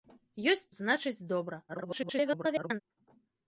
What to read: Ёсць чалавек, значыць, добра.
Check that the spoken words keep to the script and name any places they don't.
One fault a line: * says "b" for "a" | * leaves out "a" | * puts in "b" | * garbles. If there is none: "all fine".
* leaves out "чалавек"
* garbles